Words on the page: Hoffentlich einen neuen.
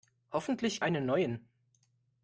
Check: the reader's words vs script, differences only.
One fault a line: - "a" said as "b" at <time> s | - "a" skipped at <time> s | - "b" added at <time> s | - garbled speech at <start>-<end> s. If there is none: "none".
none